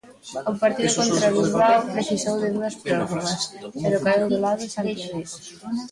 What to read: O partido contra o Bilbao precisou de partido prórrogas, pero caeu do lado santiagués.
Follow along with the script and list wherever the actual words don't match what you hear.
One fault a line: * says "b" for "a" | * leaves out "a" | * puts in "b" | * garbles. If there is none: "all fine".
* says "dúas" for "partido"